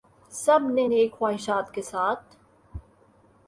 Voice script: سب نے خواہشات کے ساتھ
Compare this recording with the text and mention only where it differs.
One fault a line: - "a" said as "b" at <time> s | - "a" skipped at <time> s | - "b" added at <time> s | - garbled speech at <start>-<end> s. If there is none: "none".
- "نیک" added at 0.8 s